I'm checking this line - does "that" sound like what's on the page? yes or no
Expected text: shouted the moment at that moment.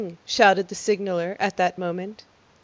yes